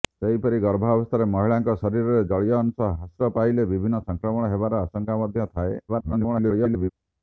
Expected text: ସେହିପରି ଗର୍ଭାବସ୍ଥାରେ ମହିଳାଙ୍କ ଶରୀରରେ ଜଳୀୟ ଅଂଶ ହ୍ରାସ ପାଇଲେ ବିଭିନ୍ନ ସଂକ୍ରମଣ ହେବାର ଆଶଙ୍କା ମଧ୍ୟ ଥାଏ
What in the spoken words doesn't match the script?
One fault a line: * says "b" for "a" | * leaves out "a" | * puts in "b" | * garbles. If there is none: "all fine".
* garbles